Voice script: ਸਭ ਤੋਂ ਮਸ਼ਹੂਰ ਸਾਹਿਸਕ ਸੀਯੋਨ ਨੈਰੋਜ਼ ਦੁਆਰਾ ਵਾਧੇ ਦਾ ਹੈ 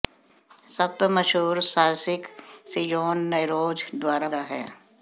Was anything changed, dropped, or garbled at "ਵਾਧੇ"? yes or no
yes